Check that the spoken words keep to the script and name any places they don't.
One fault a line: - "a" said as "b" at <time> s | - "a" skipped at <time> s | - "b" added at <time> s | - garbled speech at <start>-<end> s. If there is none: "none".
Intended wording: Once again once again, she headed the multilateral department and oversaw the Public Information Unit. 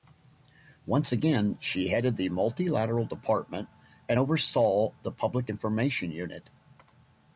- "once again" skipped at 1.6 s